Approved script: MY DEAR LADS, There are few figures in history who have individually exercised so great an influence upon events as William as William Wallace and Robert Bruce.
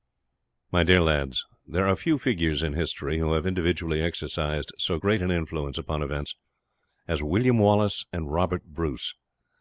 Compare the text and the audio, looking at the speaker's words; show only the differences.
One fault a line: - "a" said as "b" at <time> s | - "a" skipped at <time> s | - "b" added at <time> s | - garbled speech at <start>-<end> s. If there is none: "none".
- "as William" skipped at 7.6 s